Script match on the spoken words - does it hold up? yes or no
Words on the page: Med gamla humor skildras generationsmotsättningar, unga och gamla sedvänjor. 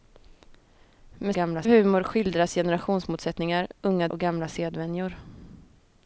yes